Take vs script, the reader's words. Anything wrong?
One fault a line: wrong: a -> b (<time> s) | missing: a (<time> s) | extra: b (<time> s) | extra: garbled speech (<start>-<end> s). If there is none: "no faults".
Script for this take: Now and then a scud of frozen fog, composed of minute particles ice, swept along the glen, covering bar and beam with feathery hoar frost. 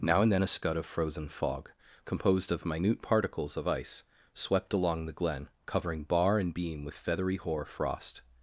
extra: of (3.6 s)